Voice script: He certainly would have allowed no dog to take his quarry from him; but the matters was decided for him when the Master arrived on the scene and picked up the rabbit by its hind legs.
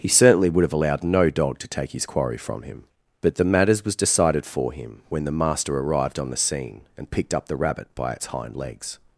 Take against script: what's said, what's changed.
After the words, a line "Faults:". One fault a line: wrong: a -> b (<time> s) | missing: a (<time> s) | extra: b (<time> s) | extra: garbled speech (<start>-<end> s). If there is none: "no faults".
He certainly would have allowed no dog to take his quarry from him; but the matters was decided for him when the Master arrived on the scene and picked up the rabbit by its hind legs.
Faults:
no faults